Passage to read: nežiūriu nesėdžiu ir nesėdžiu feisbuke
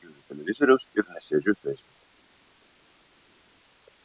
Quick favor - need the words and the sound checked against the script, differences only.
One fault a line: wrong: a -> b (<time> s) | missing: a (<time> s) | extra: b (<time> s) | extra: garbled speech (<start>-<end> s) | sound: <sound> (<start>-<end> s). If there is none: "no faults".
wrong: nesėdžiu -> televizoriaus (0.3 s)